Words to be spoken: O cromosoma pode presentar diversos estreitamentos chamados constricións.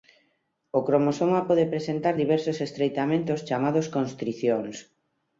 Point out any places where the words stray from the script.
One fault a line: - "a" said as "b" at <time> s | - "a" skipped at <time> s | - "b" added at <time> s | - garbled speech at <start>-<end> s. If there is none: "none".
none